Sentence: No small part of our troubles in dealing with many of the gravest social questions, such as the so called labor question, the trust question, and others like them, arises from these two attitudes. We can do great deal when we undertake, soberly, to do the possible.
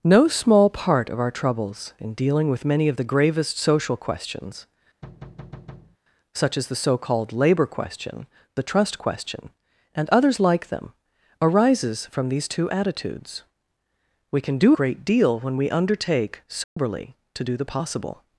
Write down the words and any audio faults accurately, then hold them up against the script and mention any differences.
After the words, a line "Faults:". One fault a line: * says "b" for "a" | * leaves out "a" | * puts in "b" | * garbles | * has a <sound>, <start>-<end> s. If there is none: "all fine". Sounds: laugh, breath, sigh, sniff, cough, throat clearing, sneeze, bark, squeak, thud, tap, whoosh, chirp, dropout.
No small part of our troubles in dealing with many of the gravest social questions, such as the so called labor question, the trust question, and others like them, arises from these two attitudes. We can do great deal when we undertake, soberly, to do the possible.
Faults:
* has a thud, 5.0-6.0 s
* has a dropout, 16.6-16.8 s